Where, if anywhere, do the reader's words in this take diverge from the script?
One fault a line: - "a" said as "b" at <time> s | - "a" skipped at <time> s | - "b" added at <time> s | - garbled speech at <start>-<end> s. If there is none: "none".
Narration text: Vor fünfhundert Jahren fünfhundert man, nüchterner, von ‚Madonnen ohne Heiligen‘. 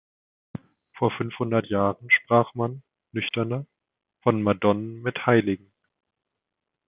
- "fünfhundert" said as "sprach" at 2.1 s
- "ohne" said as "mit" at 5.0 s